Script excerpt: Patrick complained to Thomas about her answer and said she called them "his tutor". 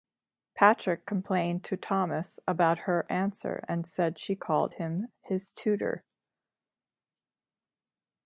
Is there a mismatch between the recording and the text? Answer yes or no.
yes